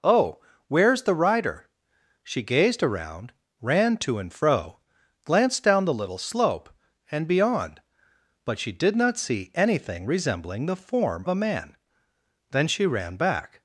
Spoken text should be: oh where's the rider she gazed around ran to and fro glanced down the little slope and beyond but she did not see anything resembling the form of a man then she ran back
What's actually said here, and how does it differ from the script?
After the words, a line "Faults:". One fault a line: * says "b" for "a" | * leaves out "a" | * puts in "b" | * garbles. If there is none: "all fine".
oh where's the rider she gazed around ran to and fro glanced down the little slope and beyond but she did not see anything resembling the form a man then she ran back
Faults:
* leaves out "of"